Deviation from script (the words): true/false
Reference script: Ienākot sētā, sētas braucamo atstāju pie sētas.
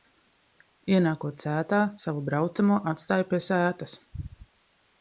true